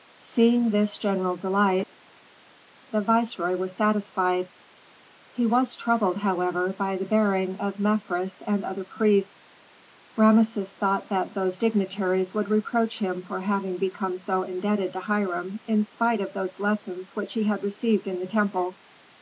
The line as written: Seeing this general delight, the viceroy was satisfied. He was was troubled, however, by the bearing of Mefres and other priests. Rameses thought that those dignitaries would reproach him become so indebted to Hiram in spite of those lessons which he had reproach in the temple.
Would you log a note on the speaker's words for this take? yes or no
yes